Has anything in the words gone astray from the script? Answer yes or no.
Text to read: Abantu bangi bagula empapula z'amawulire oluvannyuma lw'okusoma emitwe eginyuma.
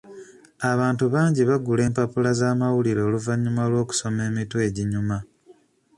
no